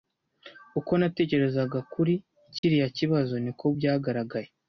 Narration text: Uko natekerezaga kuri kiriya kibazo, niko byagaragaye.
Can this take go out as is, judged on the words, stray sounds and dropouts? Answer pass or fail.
fail